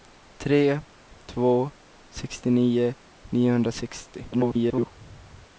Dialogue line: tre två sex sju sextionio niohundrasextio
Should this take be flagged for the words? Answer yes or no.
yes